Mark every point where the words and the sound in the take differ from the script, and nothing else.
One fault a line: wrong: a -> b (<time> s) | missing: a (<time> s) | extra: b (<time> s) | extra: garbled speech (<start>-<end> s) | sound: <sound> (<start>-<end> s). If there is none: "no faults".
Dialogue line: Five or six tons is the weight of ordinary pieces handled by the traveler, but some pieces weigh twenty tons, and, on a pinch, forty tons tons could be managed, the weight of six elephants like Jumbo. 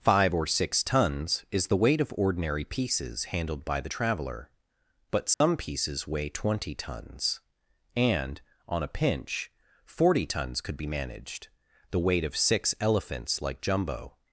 sound: dropout (5.3-5.4 s)
missing: tons (10.6 s)